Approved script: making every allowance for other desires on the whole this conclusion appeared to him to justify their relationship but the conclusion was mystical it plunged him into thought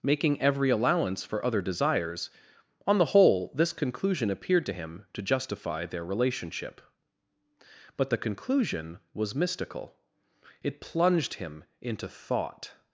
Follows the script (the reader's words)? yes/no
yes